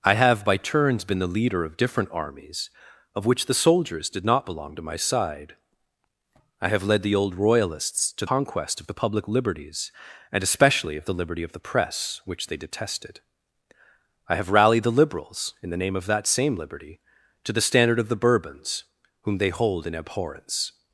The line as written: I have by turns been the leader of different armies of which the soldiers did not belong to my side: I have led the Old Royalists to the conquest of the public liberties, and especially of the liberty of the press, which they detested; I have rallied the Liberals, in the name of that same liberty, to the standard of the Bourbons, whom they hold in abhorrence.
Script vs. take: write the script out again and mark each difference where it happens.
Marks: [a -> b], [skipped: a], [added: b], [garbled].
I have by turns been the leader of different armies of which the soldiers did not belong to my side: I have led the Old Royalists to [skipped: the] conquest of the public liberties, and especially of the liberty of the press, which they detested; I have rallied the Liberals, in the name of that same liberty, to the standard of the Bourbons, whom they hold in abhorrence.